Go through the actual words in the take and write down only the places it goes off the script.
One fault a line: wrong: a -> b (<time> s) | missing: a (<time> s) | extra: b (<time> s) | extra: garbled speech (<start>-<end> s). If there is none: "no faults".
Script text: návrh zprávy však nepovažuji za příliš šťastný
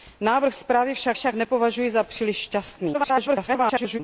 extra: však (1.1 s)
extra: garbled speech (2.9-4.0 s)